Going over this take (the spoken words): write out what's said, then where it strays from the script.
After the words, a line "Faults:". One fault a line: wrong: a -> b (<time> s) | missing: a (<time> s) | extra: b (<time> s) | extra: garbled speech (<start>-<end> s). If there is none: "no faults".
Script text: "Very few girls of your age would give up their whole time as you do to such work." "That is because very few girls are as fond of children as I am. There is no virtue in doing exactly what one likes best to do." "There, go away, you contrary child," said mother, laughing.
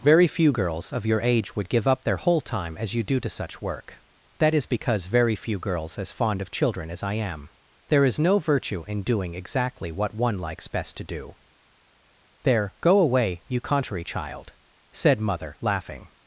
"Very few girls of your age would give up their whole time as you do to such work." "That is because very few girls as fond of children as I am. There is no virtue in doing exactly what one likes best to do." "There, go away, you contrary child," said mother, laughing.
Faults:
missing: are (6.0 s)